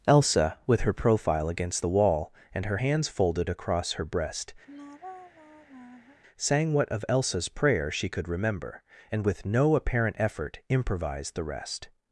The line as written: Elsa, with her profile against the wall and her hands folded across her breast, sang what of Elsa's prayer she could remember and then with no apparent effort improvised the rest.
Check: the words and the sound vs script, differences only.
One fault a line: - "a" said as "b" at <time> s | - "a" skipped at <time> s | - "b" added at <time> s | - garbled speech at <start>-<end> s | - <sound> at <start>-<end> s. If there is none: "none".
- sigh at 4.7-6.2 s
- "then" skipped at 9.2 s